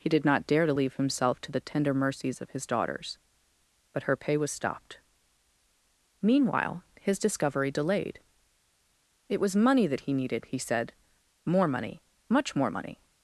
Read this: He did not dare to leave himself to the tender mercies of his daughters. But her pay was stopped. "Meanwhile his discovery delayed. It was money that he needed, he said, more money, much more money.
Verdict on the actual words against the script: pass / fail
pass